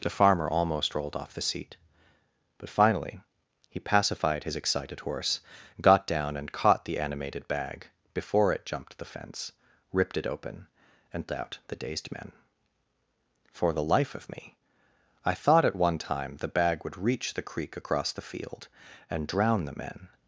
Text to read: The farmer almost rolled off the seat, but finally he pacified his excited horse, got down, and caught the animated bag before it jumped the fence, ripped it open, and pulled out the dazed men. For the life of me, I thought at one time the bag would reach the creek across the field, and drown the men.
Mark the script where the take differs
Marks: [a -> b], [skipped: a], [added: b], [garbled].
The farmer almost rolled off the seat, but finally he pacified his excited horse, got down, and caught the animated bag before it jumped the fence, ripped it open, and [skipped: pulled] out the dazed men. For the life of me, I thought at one time the bag would reach the creek across the field, and drown the men.